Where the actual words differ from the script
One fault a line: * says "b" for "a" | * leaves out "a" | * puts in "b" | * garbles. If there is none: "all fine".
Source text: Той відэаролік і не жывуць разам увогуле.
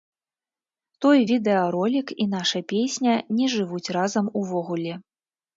* puts in "наша песня"